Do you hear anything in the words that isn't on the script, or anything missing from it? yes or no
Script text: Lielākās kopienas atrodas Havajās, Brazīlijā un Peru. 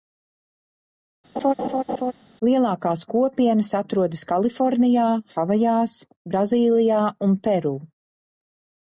yes